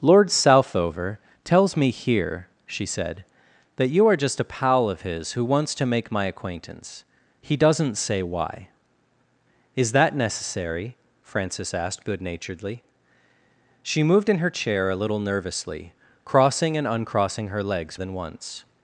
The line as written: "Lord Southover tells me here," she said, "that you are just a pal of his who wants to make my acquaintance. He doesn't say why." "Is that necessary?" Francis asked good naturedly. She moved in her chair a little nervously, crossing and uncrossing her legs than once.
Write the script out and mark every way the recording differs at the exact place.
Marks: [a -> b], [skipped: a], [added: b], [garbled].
"Lord Southover tells me here," she said, "that you are just a pal of his who wants to make my acquaintance. He doesn't say why." "Is that necessary?" Francis asked good naturedly. She moved in her chair a little nervously, crossing and uncrossing her legs than once.